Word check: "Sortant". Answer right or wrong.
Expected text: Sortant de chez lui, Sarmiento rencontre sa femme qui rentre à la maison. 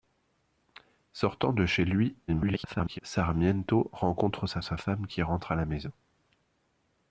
right